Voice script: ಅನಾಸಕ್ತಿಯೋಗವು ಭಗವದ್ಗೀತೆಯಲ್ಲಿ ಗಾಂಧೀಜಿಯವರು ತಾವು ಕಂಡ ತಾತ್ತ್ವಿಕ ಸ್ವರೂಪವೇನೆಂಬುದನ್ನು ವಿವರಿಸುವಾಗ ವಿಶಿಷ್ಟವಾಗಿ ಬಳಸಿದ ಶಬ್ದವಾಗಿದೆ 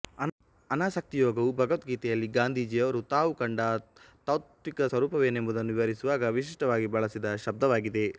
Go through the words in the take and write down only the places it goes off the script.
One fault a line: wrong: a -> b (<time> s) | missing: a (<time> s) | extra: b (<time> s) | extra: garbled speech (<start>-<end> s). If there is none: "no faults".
no faults